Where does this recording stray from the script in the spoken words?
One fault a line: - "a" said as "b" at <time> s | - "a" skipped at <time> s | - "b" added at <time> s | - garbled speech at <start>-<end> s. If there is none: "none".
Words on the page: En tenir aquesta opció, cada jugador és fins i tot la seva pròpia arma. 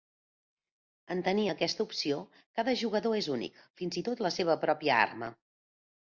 - "únic" added at 3.4 s